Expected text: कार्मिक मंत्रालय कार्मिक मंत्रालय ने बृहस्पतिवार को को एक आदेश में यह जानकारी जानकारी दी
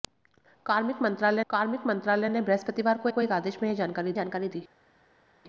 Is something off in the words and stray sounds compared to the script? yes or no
no